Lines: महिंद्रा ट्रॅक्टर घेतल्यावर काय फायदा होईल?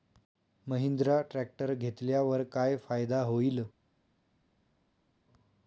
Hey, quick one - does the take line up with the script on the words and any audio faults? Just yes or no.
yes